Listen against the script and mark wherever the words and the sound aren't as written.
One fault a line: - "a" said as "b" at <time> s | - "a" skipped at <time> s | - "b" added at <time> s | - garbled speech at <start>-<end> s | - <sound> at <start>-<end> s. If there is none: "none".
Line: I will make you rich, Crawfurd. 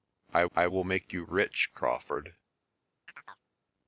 - "I" added at 0.6 s
- chirp at 3.1-3.5 s